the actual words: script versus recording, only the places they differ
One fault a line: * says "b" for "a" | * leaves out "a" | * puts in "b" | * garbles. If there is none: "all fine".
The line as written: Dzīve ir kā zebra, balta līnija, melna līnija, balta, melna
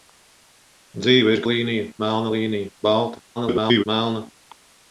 * leaves out "kā zebra balta"
* garbles